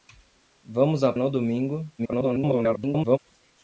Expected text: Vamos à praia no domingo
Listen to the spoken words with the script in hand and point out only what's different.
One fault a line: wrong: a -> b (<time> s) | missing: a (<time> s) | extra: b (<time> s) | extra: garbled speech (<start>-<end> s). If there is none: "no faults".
missing: praia (1.1 s)
extra: garbled speech (2.0-3.2 s)